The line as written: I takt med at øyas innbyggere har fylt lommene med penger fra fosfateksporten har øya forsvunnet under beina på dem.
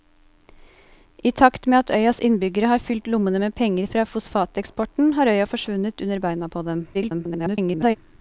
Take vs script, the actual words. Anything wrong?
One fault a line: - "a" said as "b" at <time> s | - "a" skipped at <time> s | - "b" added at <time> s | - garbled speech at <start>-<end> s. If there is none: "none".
- garbled speech at 6.9-8.0 s